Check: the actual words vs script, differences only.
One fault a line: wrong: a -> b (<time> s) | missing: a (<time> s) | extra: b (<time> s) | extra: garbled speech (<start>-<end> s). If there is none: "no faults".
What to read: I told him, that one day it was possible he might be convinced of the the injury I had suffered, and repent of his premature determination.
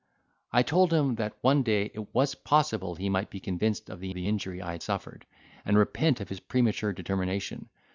no faults